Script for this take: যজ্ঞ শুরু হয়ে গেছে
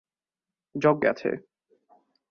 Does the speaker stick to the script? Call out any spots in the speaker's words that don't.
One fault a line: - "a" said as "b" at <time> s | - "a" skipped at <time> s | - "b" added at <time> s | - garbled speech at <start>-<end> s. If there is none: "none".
- "শুরু হয়ে" skipped at 1.0 s